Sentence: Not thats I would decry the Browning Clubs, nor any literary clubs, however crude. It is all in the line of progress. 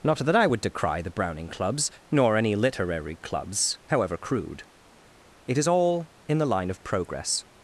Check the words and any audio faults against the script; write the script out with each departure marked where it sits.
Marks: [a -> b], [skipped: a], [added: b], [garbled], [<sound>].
Not [thats -> that] I would decry the Browning Clubs, nor any literary clubs, however crude. It is all in the line of progress.